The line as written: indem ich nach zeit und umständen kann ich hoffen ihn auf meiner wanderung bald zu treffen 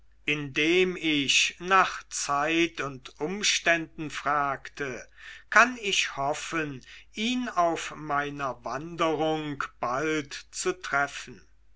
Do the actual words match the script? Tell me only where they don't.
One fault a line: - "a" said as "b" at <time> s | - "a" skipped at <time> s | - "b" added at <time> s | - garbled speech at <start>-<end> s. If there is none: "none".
- "fragte" added at 4.1 s